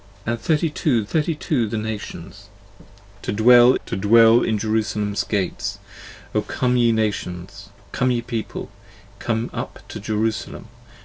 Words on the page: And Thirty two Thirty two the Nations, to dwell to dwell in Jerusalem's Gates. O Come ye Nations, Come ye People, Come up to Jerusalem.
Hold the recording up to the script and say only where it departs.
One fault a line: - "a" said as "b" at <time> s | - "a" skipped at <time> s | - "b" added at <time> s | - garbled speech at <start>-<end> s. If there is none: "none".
none